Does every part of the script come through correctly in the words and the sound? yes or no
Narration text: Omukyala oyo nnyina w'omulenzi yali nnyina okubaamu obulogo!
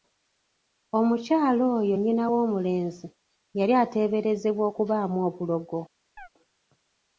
no